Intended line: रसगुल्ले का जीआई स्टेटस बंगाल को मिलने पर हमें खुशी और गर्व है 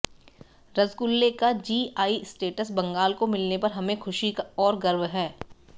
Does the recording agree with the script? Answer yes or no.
yes